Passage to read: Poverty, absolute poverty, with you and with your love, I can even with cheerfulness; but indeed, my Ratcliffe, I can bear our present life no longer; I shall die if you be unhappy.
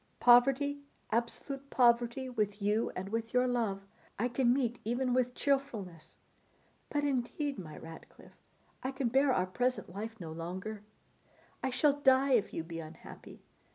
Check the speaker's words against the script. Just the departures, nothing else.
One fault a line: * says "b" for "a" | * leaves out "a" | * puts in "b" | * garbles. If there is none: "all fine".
* puts in "meet"